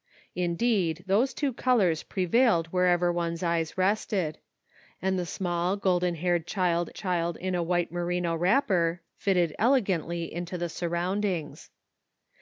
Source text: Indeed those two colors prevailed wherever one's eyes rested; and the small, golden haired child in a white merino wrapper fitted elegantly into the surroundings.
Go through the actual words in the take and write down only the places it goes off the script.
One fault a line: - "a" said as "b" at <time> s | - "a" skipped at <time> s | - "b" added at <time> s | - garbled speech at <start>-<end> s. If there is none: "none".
- "child" added at 6.9 s